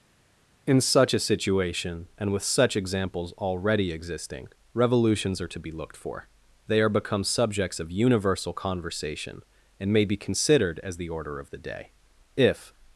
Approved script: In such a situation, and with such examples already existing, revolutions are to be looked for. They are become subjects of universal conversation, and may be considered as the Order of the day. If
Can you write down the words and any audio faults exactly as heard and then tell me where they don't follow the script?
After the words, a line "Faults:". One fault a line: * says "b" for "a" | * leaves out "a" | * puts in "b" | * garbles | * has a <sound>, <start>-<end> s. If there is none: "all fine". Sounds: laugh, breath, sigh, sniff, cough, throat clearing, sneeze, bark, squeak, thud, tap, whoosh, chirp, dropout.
In such a situation, and with such examples already existing, revolutions are to be looked for. They are become subjects of universal conversation, and may be considered as the Order of the day. If
Faults:
all fine